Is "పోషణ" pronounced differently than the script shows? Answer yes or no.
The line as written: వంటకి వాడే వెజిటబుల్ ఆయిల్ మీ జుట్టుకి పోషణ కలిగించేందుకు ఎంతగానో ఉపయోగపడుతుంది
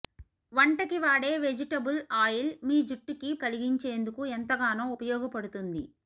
yes